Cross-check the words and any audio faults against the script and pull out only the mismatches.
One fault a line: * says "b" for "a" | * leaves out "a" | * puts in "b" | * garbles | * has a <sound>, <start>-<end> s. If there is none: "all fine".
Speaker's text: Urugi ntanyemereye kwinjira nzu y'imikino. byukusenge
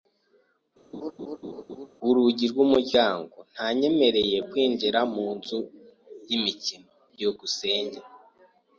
* has a laugh, 0.9-1.9 s
* puts in "rw'umuryango"
* puts in "mu"